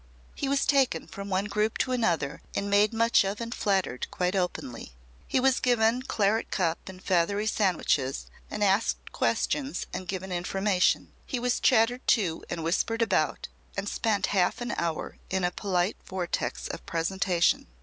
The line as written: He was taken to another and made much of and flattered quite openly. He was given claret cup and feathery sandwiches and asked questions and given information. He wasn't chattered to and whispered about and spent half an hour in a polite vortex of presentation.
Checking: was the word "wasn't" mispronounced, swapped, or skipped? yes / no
yes